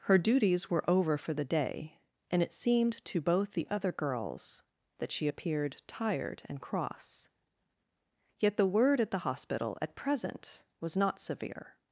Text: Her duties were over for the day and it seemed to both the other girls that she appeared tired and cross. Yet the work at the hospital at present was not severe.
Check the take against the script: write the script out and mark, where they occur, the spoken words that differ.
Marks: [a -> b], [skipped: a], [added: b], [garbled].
Her duties were over for the day and it seemed to both the other girls that she appeared tired and cross. Yet the [work -> word] at the hospital at present was not severe.